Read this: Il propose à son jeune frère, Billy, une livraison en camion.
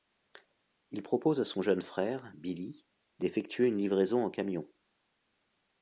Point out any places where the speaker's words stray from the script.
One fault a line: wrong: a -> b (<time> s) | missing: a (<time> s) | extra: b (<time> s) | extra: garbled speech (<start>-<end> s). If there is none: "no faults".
extra: d'effectuer (3.2 s)